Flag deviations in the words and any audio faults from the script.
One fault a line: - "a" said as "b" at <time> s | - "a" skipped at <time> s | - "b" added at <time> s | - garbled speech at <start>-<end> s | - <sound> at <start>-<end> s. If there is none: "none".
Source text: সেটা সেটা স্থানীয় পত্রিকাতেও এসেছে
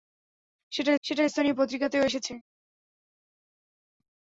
none